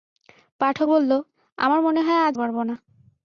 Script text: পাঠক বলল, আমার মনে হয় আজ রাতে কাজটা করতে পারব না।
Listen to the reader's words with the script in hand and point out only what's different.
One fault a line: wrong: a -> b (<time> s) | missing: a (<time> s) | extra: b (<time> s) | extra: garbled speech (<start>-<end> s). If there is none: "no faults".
missing: রাতে কাজটা করতে (2.3 s)